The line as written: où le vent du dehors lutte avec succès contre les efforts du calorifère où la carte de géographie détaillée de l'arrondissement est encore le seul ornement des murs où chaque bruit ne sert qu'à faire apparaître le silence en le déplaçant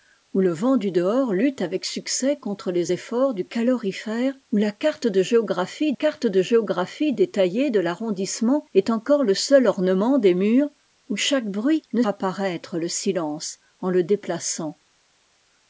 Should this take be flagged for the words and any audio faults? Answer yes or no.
yes